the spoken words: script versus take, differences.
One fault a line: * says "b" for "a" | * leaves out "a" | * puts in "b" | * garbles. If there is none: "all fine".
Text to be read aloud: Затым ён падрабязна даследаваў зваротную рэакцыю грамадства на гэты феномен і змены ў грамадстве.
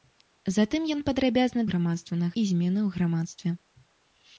* leaves out "даследаваў зваротную рэакцыю"
* leaves out "гэты феномен"